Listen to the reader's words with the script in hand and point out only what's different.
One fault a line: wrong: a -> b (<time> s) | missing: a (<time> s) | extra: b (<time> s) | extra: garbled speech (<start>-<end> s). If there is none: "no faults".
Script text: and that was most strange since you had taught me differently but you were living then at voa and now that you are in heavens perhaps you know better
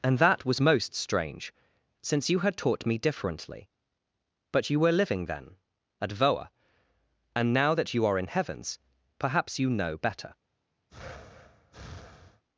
no faults